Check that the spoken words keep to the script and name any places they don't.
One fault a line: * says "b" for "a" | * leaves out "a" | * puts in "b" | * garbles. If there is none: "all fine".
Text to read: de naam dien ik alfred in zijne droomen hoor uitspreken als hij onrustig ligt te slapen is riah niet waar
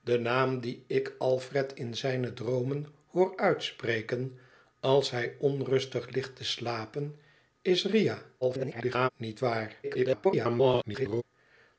* garbles
* garbles